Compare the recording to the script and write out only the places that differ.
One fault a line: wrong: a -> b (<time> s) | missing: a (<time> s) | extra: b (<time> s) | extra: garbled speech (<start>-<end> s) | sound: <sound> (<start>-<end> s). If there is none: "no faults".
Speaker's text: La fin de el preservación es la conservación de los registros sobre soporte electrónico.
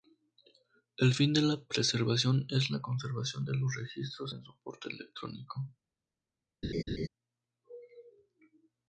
wrong: La -> El (1.0 s)
wrong: el -> la (1.4 s)
wrong: sobre -> en (4.3 s)
sound: laugh (6.6-7.1 s)